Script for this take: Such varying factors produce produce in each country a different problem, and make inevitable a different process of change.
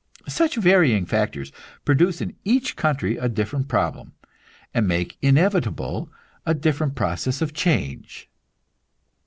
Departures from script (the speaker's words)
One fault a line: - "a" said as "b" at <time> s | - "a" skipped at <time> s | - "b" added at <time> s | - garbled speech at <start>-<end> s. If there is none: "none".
- "produce" skipped at 2.2 s